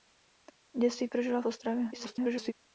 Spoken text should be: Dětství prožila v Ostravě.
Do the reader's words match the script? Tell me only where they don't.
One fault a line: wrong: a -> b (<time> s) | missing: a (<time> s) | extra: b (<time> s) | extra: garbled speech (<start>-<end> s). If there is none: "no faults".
extra: garbled speech (1.9-2.5 s)